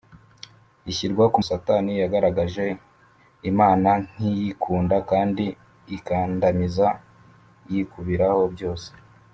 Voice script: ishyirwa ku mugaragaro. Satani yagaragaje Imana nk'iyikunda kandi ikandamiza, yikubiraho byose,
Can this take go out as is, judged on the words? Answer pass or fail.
fail